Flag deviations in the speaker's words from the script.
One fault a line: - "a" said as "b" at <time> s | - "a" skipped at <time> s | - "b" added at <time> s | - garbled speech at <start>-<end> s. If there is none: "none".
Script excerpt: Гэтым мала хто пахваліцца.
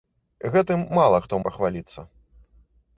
none